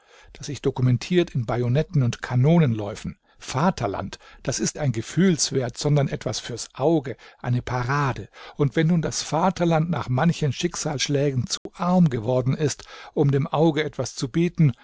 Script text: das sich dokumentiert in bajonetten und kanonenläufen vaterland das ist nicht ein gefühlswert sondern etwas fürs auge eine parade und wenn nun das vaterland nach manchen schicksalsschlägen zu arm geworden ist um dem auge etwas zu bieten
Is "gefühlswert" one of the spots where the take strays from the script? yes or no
no